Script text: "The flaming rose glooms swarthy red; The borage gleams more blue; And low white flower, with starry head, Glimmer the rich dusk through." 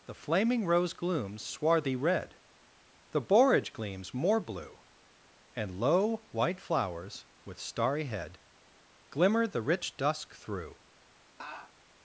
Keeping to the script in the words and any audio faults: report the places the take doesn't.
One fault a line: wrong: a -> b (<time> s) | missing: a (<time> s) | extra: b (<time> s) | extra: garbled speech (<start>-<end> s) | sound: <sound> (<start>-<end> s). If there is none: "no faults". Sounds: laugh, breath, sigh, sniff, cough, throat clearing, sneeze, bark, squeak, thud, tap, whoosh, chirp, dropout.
wrong: flower -> flowers (6.6 s)
sound: laugh (11.4-11.7 s)